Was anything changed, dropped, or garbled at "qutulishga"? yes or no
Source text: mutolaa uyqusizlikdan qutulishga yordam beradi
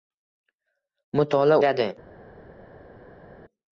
yes